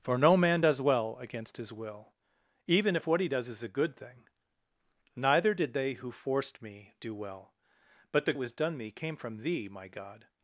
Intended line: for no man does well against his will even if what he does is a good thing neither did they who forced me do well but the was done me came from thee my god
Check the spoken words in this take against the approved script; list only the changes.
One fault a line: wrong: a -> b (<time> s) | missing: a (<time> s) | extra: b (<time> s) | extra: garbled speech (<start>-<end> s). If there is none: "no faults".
no faults